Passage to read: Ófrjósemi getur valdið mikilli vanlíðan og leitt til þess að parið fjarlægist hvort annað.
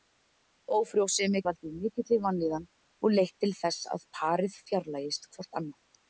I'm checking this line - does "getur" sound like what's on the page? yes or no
no